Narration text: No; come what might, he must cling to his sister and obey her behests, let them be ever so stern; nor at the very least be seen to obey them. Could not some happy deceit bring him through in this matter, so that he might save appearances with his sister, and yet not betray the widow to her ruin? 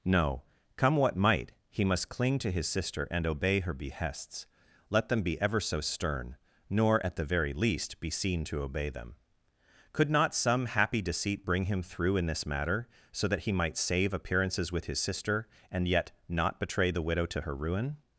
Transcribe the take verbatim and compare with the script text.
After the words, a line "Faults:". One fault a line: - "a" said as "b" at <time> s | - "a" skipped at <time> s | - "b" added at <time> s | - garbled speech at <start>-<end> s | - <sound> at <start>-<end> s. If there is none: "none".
No; come what might, he must cling to his sister and obey her behests, let them be ever so stern; nor at the very least be seen to obey them. Could not some happy deceit bring him through in this matter, so that he might save appearances with his sister, and yet not betray the widow to her ruin?
Faults:
none